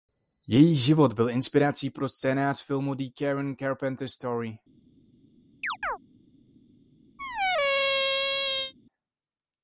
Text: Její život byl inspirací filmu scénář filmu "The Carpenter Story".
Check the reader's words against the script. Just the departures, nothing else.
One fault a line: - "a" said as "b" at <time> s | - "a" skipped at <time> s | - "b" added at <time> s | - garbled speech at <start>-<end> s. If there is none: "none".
- "filmu" said as "pro" at 1.9 s
- "Karen" added at 3.2 s